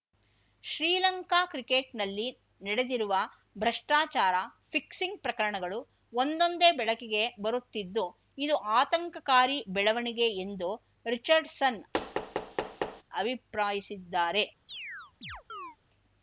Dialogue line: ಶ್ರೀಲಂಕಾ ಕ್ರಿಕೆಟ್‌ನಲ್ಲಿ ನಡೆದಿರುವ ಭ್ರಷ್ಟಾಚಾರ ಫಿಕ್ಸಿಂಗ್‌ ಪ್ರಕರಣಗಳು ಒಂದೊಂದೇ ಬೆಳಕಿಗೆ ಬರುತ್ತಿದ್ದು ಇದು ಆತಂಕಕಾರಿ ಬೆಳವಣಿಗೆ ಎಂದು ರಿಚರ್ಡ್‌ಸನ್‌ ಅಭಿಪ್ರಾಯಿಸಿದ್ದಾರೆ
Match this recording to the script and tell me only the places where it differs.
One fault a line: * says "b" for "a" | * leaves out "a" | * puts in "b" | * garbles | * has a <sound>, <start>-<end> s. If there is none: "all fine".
* has a thud, 11.9-13.0 s
* has a chirp, 14.7-15.8 s